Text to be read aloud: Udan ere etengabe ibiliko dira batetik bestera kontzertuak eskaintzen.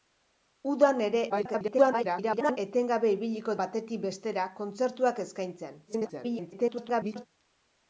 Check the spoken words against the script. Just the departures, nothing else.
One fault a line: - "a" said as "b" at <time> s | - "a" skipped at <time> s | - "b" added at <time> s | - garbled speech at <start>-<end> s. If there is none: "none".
- garbled speech at 1.3-2.6 s
- "dira" skipped at 3.6 s
- garbled speech at 5.9-7.3 s